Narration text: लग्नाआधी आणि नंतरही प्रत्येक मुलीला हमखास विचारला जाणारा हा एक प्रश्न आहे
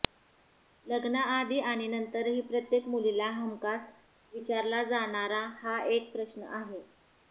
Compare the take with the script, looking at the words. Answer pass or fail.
pass